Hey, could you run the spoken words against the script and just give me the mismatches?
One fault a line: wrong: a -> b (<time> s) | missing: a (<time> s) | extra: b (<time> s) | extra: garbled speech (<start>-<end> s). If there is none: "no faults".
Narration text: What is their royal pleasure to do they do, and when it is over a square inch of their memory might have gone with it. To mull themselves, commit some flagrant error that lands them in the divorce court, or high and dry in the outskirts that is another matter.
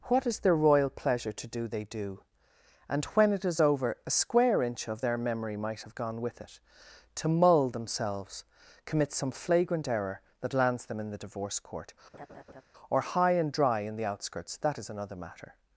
no faults